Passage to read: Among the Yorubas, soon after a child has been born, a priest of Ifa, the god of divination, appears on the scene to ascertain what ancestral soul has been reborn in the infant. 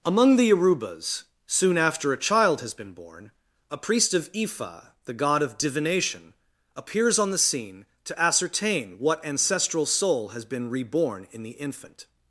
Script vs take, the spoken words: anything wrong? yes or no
no